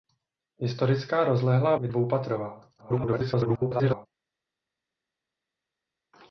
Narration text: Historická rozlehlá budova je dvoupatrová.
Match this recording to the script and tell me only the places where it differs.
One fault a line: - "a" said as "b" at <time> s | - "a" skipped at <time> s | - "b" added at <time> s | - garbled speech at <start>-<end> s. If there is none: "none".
- "budova" skipped at 1.8 s
- garbled speech at 2.8-4.1 s